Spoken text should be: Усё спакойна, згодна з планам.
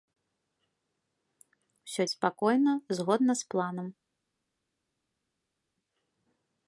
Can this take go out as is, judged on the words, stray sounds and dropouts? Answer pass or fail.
pass